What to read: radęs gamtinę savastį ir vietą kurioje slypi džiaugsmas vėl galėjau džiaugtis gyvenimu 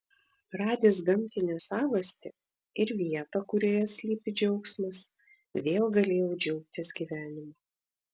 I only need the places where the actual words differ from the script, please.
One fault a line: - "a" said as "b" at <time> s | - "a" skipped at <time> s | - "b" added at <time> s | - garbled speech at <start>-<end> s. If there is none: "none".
none